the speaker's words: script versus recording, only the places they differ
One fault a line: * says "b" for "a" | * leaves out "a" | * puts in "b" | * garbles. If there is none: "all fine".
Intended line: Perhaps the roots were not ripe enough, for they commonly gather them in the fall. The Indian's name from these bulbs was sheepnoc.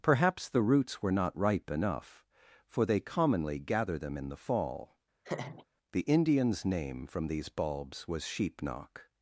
all fine